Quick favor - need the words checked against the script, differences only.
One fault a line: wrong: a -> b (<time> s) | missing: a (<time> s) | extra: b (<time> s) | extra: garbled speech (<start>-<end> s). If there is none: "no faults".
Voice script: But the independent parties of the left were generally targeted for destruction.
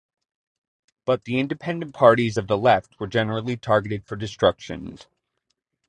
no faults